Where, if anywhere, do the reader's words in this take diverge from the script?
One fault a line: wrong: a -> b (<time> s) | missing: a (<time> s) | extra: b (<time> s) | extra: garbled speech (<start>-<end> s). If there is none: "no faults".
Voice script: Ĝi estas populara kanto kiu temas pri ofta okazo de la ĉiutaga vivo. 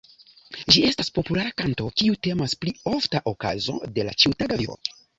no faults